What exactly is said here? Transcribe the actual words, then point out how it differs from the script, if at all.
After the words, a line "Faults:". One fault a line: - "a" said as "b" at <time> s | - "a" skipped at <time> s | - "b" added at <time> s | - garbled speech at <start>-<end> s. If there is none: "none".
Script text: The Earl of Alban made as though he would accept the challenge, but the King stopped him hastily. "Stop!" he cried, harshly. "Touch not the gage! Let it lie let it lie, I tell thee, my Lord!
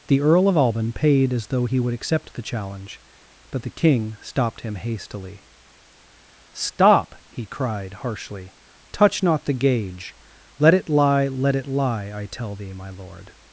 The Earl of Alban paid as though he would accept the challenge, but the King stopped him hastily. "Stop!" he cried, harshly. "Touch not the gage! Let it lie let it lie, I tell thee, my Lord!
Faults:
- "made" said as "paid" at 0.9 s